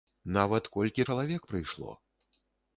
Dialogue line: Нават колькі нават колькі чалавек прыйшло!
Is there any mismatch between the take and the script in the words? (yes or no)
yes